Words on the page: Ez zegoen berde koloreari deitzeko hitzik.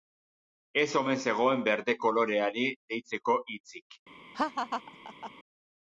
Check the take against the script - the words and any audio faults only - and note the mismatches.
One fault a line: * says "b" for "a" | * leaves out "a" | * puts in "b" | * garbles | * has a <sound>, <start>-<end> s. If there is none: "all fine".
* puts in "omen"
* has a laugh, 4.3-5.3 s